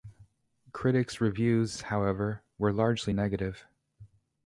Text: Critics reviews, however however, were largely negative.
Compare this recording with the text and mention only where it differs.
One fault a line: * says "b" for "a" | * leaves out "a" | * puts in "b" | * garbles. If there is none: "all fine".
* leaves out "however"